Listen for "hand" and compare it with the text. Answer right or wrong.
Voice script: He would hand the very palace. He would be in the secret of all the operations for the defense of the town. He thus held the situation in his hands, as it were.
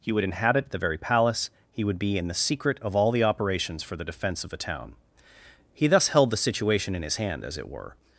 wrong